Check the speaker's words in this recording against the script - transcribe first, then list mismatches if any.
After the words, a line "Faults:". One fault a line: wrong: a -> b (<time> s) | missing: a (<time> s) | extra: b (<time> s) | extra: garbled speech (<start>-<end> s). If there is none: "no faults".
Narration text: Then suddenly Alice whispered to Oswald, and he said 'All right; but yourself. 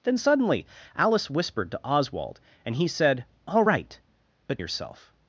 Then suddenly Alice whispered to Oswald, and he said 'All right; but yourself.
Faults:
no faults